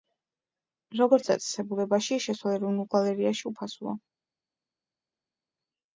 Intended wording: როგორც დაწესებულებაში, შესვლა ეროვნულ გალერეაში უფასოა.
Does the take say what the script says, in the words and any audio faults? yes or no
yes